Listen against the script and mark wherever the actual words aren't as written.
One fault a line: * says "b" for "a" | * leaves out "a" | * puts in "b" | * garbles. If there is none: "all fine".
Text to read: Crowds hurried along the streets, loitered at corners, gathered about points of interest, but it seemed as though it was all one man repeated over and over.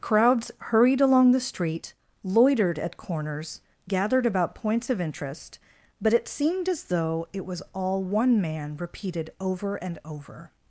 * says "street" for "streets"